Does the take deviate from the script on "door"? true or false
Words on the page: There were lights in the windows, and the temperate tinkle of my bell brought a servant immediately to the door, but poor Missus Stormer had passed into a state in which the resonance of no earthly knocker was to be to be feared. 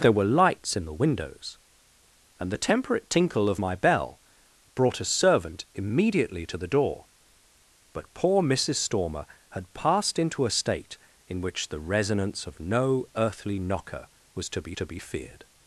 false